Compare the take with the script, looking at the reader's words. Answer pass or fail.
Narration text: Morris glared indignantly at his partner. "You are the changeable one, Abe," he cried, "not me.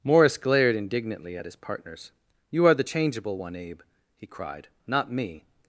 fail